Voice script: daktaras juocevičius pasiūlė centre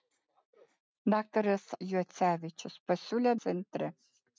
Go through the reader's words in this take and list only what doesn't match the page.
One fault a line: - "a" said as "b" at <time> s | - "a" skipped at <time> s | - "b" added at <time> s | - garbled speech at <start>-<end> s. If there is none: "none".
none